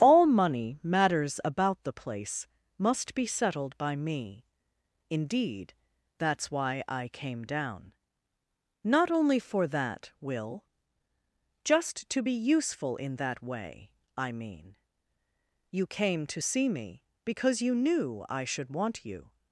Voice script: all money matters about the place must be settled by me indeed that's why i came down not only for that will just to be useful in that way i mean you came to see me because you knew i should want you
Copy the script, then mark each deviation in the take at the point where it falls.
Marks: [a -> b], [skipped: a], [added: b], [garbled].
all money matters about the place must be settled by me indeed that's why i came down not only for that will just to be useful in that way i mean you came to see me because you knew i should want you